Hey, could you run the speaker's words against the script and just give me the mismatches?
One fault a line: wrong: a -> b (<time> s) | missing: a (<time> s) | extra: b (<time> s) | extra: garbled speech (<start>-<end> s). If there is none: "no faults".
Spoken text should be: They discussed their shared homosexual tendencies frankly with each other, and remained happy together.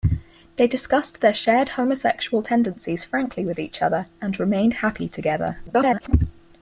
extra: garbled speech (5.7-6.1 s)